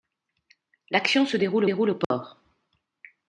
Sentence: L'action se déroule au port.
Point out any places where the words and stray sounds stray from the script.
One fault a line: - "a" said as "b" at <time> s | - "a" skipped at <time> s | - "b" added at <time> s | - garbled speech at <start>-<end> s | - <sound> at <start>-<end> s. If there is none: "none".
- "déroule" added at 1.6 s
- dropout at 2.0-2.1 s